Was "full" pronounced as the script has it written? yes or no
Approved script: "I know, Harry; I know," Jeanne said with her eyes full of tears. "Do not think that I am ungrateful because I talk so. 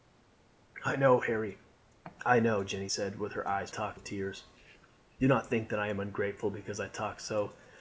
no